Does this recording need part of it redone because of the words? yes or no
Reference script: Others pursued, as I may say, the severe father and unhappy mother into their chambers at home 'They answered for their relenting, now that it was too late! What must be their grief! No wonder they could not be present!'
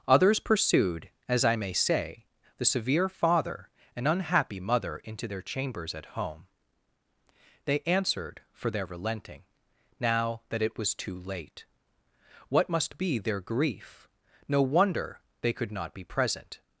no